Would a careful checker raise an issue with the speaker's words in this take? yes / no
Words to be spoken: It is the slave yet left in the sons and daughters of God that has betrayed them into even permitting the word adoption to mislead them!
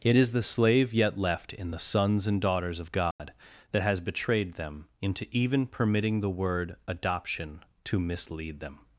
no